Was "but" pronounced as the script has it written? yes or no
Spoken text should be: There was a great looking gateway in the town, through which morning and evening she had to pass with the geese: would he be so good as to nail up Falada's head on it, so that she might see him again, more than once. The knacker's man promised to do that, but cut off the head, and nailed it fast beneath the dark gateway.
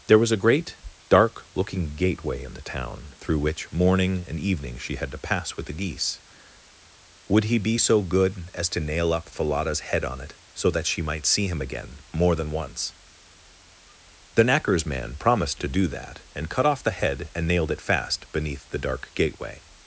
no